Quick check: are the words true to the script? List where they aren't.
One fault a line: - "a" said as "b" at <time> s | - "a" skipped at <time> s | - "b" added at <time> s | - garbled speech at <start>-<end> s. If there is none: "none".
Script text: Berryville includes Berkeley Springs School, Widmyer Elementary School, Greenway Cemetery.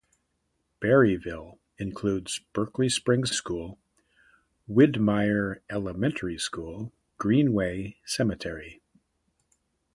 none